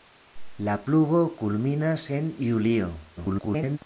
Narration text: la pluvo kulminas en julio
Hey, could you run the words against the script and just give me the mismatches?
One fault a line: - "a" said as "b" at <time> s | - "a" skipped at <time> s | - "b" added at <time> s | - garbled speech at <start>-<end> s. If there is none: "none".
- garbled speech at 3.2-3.8 s